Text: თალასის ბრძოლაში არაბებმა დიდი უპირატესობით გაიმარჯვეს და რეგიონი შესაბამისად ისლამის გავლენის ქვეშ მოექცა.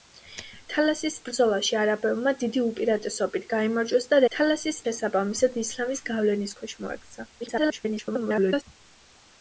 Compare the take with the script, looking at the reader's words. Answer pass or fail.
fail